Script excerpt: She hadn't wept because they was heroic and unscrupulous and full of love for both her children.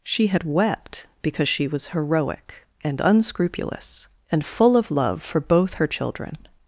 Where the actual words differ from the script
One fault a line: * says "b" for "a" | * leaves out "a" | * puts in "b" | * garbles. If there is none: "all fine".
* says "had" for "hadn't"
* says "she" for "they"